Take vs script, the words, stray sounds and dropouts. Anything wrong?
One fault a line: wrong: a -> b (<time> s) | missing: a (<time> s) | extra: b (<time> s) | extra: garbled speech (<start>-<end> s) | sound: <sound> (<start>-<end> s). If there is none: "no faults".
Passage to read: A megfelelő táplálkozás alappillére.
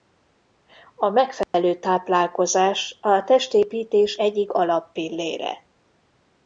sound: dropout (1.4-1.5 s)
extra: a testépítés egyik (3.0 s)